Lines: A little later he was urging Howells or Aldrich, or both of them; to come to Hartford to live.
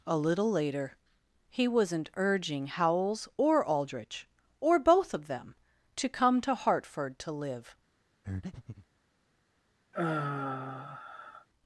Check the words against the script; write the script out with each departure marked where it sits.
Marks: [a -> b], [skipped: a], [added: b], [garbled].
A little later he [was -> wasn't] urging Howells or Aldrich, or both of them; to come to Hartford to live.